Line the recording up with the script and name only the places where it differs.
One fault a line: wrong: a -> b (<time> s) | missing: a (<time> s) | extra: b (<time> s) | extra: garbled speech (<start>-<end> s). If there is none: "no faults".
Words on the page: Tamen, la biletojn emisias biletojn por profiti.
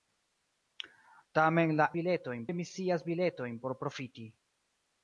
no faults